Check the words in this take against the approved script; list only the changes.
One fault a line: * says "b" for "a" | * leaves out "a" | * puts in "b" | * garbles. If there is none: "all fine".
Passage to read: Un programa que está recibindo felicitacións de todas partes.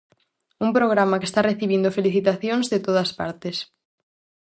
all fine